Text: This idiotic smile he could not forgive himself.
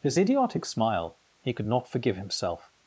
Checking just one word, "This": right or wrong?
wrong